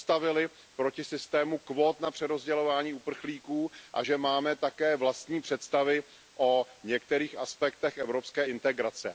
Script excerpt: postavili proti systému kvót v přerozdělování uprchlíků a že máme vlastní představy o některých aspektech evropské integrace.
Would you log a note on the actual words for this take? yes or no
yes